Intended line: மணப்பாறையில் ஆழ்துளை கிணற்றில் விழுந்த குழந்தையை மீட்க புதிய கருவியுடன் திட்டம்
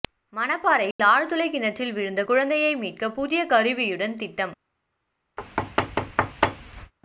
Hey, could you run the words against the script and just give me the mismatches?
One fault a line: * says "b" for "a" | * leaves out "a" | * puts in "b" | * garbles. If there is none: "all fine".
all fine